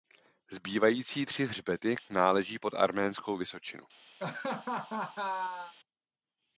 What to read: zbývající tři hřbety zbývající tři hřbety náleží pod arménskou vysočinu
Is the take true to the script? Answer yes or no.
no